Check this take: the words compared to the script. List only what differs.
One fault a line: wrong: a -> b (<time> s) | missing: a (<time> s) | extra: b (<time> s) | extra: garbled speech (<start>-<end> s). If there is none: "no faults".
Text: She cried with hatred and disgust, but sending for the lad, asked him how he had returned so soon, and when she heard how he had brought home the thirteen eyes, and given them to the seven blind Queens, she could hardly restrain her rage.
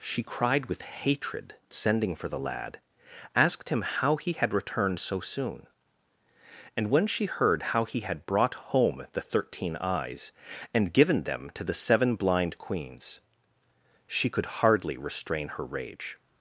missing: and disgust but (1.6 s)